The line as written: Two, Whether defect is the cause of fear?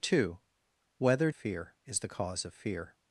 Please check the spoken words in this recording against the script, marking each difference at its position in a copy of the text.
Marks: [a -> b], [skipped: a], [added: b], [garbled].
Two, Whether [defect -> fear] is the cause of fear?